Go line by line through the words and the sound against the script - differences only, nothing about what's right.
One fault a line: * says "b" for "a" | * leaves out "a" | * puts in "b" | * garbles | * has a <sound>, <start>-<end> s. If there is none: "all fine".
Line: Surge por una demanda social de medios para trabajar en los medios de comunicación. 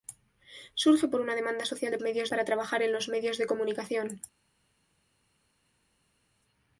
all fine